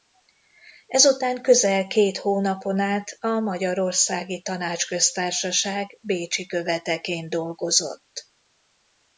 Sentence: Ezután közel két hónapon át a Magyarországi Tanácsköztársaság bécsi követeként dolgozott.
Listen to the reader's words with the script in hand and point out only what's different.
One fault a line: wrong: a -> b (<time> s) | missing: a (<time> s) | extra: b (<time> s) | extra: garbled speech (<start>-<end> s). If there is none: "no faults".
no faults